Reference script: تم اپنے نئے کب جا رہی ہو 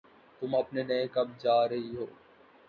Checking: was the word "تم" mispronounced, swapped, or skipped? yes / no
no